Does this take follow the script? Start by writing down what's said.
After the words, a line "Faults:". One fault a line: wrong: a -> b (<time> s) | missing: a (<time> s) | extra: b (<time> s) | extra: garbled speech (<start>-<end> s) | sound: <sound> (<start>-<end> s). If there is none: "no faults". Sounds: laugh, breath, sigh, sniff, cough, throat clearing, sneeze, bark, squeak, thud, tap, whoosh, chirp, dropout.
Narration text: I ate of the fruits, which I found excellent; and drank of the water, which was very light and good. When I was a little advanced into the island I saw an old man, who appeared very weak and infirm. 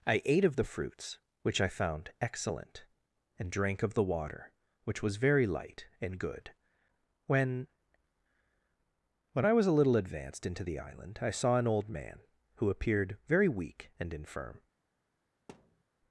I ate of the fruits, which I found excellent; and drank of the water, which was very light and good. When When I was a little advanced into the island I saw an old man, who appeared very weak and infirm.
Faults:
extra: When (9.3 s)
sound: thud (15.5-15.8 s)